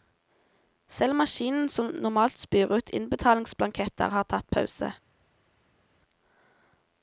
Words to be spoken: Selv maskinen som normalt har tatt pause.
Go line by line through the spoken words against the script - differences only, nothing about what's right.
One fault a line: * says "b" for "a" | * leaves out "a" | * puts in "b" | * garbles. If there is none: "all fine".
* puts in "spyr ut innbetalingsblanketter"